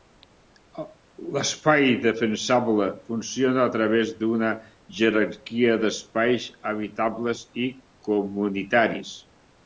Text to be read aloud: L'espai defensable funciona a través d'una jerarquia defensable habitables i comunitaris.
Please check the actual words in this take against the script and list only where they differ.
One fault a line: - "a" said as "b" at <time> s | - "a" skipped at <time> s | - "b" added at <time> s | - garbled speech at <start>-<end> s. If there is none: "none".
- "defensable" said as "d'espais" at 5.8 s